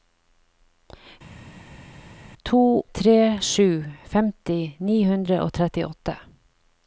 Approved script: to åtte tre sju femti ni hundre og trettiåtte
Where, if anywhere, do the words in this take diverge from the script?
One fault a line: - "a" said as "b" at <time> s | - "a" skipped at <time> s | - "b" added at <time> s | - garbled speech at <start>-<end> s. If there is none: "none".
- "åtte" skipped at 2.8 s